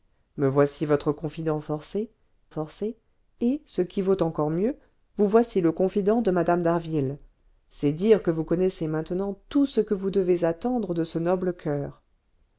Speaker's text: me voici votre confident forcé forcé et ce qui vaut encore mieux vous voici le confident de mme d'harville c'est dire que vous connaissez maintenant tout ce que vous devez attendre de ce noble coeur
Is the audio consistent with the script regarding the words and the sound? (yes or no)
yes